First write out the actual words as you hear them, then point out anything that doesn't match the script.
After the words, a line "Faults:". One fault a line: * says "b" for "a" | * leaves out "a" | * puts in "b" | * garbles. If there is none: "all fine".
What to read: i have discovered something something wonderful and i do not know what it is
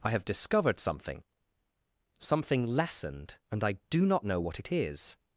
i have discovered something something lessened and i do not know what it is
Faults:
* says "lessened" for "wonderful"